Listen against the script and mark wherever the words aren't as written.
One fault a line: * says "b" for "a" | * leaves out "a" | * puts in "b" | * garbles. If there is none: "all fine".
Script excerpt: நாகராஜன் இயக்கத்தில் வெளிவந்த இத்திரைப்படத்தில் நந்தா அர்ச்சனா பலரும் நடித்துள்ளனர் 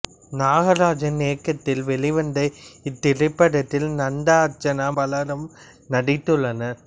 all fine